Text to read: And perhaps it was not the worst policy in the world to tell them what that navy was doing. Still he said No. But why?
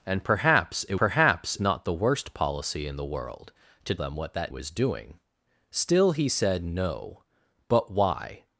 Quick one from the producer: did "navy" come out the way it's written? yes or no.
no